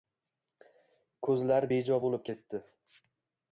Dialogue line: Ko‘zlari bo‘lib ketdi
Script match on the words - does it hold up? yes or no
no